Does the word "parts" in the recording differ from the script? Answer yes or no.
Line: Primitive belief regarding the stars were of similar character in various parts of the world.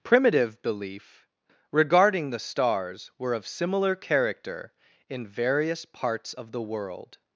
no